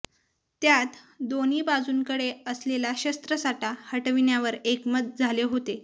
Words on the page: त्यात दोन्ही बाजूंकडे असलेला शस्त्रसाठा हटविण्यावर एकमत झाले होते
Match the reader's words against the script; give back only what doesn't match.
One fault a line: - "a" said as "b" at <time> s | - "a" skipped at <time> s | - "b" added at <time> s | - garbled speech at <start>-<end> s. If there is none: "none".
none